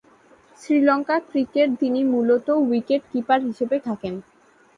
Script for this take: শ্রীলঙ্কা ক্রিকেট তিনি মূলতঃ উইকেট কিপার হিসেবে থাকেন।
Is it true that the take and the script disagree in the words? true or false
false